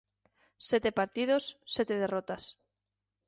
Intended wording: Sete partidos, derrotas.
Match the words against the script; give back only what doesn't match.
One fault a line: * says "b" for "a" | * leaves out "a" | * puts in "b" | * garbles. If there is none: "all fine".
* puts in "sete"